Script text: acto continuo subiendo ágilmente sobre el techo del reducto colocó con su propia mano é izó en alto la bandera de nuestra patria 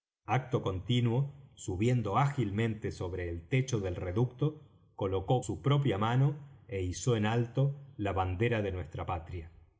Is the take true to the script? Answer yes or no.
no